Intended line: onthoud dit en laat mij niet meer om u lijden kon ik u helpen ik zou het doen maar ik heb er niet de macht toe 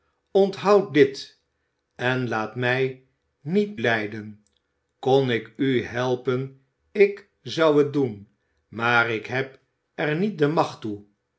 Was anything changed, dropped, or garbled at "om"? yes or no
yes